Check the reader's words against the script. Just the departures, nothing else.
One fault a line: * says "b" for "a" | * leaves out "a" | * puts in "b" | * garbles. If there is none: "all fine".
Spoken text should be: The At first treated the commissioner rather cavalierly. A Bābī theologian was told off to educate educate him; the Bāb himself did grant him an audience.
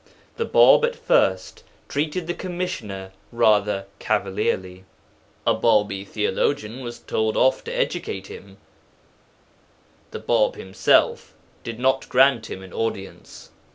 * puts in "Bāb"
* leaves out "educate"
* puts in "not"